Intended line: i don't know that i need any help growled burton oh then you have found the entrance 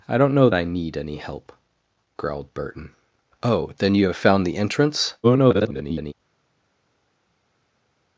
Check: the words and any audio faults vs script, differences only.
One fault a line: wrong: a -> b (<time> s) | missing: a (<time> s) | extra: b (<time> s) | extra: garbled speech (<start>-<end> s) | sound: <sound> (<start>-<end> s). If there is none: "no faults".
missing: that (0.5 s)
extra: garbled speech (5.2-6.1 s)